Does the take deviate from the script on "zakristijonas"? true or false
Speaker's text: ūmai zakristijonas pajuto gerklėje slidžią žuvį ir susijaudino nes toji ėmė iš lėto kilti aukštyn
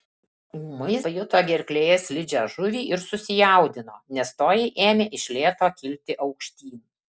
true